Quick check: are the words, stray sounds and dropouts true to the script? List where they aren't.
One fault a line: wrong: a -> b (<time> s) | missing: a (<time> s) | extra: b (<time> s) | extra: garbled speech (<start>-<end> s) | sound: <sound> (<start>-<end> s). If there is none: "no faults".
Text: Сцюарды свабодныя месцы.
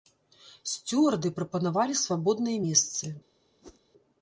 extra: прапанавалі (1.4 s)
sound: whoosh (3.6-3.8 s)